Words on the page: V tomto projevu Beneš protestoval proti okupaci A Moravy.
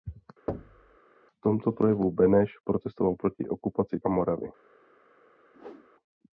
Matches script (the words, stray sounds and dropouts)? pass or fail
fail